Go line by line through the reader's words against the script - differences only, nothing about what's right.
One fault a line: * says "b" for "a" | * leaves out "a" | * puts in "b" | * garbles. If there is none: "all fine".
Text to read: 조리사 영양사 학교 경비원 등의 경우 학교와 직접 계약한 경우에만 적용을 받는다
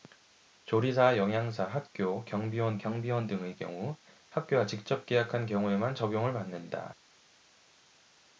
* puts in "경비원"